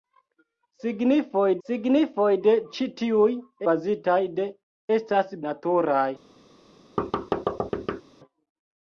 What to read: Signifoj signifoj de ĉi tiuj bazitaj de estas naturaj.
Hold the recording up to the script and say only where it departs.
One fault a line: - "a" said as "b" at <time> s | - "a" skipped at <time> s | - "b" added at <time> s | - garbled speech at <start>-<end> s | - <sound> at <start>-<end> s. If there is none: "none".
- thud at 7.0-8.0 s